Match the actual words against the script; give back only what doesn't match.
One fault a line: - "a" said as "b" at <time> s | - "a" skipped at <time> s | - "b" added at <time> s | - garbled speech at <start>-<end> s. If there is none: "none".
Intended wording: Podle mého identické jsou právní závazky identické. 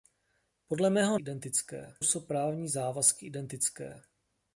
none